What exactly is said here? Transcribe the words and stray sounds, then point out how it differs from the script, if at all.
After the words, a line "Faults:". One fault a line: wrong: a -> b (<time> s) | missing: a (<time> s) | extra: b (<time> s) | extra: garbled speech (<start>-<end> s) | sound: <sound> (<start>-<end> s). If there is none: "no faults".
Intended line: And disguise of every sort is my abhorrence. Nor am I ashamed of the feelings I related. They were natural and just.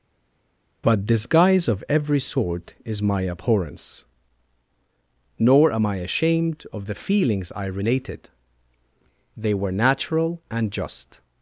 But disguise of every sort is my abhorrence. Nor am I ashamed of the feelings I related. They were natural and just.
Faults:
wrong: And -> But (0.8 s)